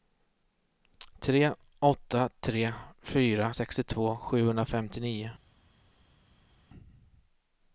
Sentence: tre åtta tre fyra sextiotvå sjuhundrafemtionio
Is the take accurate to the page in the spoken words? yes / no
yes